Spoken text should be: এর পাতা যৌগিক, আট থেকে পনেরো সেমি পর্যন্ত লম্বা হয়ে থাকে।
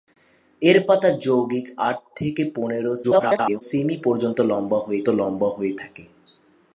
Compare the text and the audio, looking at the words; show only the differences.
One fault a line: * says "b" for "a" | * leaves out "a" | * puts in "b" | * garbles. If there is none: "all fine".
* garbles
* puts in "লম্বা হয়ে"